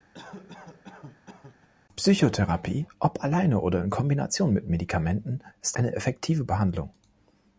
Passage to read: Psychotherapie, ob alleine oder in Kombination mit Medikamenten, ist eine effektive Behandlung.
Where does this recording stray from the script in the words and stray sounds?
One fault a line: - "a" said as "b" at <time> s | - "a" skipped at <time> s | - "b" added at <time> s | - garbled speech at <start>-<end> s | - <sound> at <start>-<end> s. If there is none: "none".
- cough at 0.1-1.7 s